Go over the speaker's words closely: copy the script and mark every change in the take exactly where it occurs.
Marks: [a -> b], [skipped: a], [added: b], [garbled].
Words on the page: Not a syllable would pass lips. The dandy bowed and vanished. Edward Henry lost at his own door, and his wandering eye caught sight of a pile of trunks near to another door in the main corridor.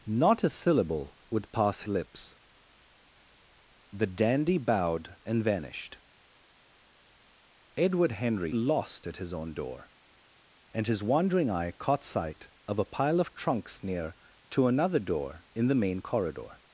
Not a syllable would pass lips. The dandy bowed and vanished. Edward Henry lost at his own door, and his wandering eye caught sight of a pile of trunks near to another door in the main corridor.